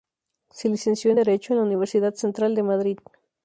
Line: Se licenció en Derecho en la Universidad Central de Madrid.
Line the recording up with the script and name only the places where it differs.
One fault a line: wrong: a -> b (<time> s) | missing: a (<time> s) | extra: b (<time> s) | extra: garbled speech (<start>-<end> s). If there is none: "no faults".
no faults